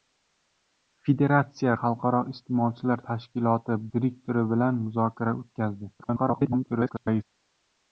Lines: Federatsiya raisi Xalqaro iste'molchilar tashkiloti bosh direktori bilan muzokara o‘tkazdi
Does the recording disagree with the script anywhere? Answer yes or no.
yes